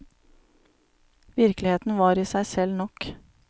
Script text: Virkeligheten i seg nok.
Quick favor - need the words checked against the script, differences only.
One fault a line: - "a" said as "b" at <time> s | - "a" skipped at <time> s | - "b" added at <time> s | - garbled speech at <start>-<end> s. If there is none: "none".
- "var" added at 2.0 s
- "selv" added at 2.5 s